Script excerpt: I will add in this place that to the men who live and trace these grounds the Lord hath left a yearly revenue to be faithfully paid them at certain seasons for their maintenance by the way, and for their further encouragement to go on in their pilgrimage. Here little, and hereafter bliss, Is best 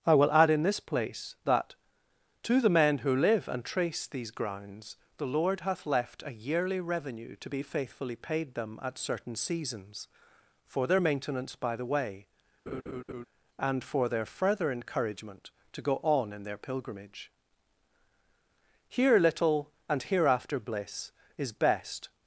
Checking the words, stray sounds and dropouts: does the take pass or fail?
fail